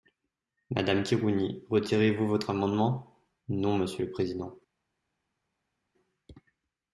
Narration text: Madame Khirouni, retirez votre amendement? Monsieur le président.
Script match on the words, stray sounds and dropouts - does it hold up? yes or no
no